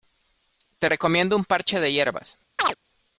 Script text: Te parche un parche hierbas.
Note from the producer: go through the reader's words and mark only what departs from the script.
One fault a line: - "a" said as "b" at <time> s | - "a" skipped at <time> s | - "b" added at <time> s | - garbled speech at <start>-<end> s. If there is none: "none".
- "parche" said as "recomiendo" at 0.8 s
- "de" added at 1.8 s